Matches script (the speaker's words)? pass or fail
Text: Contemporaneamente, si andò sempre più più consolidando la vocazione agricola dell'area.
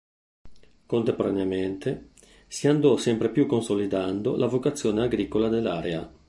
fail